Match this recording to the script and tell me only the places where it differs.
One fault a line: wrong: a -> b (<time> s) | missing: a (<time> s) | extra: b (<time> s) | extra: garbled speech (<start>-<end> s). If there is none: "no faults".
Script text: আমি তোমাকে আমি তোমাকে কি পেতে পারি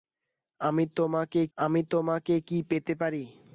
no faults